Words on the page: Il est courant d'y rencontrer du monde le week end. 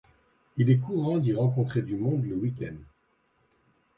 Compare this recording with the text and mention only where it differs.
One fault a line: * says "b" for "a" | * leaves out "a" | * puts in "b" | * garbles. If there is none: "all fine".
all fine